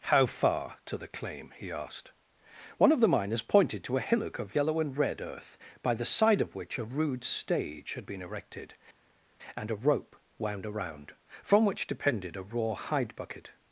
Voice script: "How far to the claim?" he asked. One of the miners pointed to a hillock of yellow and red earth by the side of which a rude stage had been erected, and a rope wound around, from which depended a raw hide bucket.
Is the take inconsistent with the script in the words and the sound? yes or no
no